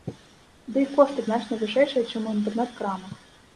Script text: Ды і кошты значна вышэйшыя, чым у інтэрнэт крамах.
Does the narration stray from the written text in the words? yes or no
no